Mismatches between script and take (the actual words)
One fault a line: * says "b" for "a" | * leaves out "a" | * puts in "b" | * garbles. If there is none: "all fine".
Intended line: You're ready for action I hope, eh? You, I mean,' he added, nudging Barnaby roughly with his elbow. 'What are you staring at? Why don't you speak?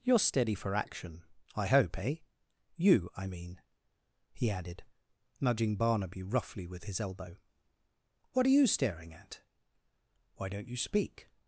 * says "steady" for "ready"